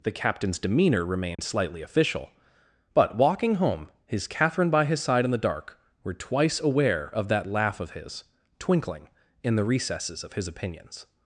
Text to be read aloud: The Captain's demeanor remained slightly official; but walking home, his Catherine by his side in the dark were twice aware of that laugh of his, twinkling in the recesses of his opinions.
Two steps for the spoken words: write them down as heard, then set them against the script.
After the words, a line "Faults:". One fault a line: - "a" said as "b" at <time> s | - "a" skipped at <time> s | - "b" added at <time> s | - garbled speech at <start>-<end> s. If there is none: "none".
The Captain's demeanor remained slightly official; but walking home, his Catherine by his side in the dark were twice aware of that laugh of his, twinkling in the recesses of his opinions.
Faults:
none